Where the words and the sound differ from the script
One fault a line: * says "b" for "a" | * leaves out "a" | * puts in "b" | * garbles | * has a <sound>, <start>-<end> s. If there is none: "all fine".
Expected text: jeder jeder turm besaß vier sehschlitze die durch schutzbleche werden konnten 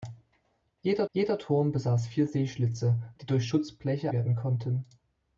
all fine